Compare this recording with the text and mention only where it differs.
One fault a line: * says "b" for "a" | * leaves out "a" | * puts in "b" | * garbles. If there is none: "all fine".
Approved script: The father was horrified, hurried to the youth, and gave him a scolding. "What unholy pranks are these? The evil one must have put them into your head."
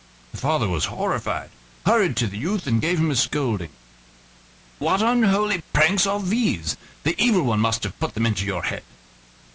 all fine